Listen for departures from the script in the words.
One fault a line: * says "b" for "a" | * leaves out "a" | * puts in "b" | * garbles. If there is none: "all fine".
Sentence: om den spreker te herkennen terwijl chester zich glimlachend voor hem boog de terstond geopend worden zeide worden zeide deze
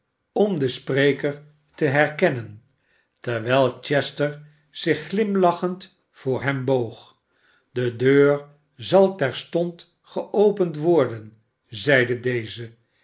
* puts in "deur zal"
* leaves out "worden zeide"